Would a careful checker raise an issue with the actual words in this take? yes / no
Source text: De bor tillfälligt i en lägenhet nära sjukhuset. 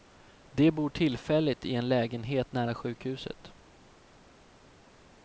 no